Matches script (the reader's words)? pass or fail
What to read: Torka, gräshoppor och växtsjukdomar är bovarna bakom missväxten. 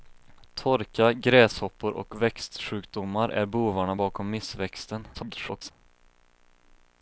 fail